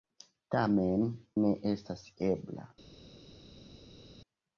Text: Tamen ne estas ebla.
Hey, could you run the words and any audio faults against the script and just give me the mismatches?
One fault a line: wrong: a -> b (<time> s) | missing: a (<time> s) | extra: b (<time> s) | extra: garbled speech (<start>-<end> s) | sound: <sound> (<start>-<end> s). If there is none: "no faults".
no faults